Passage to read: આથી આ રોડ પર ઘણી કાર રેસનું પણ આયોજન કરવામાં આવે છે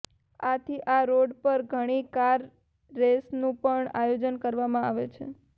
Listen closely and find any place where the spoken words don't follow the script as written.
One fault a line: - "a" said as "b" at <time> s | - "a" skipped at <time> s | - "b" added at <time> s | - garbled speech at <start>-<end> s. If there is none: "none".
none